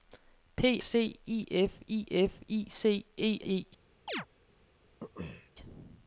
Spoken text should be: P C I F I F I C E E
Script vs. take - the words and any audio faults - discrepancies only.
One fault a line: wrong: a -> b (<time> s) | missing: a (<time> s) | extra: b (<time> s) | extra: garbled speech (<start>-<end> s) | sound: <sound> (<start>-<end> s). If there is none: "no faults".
sound: chirp (4.1-4.3 s)
sound: throat clearing (5.0-5.5 s)